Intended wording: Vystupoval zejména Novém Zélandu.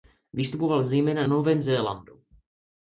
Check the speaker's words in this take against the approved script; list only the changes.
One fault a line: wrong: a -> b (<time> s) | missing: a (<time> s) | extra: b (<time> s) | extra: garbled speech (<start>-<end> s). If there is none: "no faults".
no faults